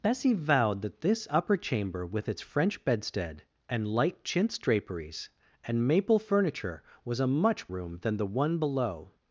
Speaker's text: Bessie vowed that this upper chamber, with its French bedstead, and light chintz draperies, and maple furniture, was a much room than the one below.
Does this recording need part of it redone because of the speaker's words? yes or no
no